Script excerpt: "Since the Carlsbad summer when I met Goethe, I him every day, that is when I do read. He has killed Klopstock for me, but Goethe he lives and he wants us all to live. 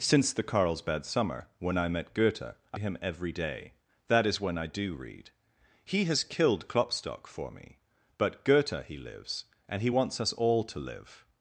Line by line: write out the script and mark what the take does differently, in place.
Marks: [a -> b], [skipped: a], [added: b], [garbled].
"Since the Carlsbad summer when I met Goethe, I him every day, that is when I do read. He has killed Klopstock for me, but Goethe he lives and he wants us all to live.